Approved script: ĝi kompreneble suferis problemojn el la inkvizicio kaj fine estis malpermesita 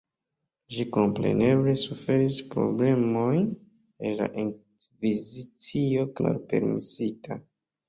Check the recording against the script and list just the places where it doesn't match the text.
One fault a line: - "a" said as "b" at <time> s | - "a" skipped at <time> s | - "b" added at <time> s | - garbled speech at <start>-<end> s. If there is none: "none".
- "kaj fine estis" skipped at 6.1 s